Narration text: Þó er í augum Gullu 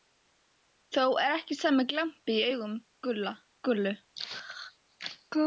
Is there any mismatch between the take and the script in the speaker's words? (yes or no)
yes